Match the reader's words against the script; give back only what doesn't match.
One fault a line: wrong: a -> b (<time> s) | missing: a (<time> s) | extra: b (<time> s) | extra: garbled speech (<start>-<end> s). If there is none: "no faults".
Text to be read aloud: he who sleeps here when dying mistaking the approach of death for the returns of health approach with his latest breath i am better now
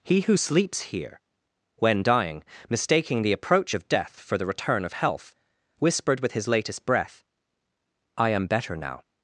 wrong: returns -> return (4.4 s)
wrong: approach -> whispered (5.8 s)